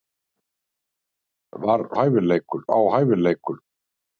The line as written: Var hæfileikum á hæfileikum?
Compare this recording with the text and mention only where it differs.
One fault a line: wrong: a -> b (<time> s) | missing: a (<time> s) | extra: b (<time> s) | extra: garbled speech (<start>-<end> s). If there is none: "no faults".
no faults